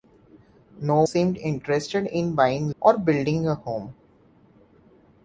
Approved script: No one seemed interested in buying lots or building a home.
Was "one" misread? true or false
true